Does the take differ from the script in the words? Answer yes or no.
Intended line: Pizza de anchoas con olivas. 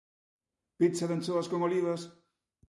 no